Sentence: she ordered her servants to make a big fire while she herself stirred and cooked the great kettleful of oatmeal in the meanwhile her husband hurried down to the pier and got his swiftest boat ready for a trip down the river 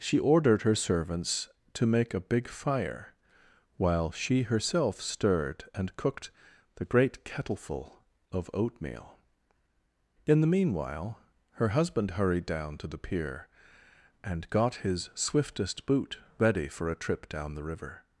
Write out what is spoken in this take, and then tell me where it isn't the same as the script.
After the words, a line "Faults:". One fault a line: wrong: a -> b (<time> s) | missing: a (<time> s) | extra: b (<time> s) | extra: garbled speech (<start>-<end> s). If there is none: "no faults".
she ordered her servants to make a big fire while she herself stirred and cooked the great kettleful of oatmeal in the meanwhile her husband hurried down to the pier and got his swiftest boot ready for a trip down the river
Faults:
wrong: boat -> boot (15.8 s)